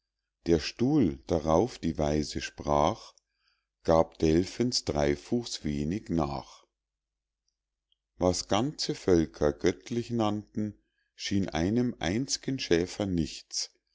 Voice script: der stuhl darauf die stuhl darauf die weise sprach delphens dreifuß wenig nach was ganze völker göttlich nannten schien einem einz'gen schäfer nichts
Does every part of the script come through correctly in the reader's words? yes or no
no